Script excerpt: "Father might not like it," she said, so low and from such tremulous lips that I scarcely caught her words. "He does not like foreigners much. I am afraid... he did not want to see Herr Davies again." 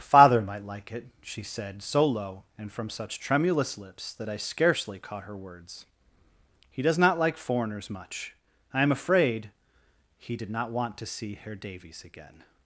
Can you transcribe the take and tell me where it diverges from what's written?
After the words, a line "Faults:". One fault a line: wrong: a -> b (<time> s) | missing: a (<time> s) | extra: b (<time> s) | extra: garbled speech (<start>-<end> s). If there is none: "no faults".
"Father might like it," she said, so low and from such tremulous lips that I scarcely caught her words. "He does not like foreigners much. I am afraid... he did not want to see Herr Davies again."
Faults:
missing: not (0.7 s)